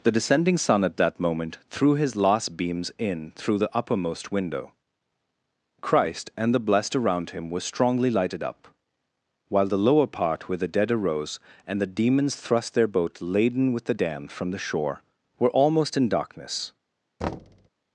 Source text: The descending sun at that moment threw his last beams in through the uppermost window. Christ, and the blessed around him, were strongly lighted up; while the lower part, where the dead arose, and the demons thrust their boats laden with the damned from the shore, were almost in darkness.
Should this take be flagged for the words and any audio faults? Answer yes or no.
yes